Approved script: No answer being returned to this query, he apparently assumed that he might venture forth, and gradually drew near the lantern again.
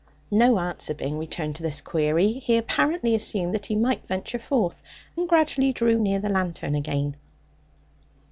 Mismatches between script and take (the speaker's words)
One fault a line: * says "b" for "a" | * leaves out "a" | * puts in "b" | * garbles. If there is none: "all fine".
all fine